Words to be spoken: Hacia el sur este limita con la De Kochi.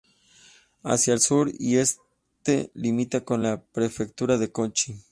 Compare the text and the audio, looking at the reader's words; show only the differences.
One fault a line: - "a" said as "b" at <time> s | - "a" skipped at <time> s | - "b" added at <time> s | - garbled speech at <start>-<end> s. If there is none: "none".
- "y" added at 1.6 s
- "Prefectura" added at 3.6 s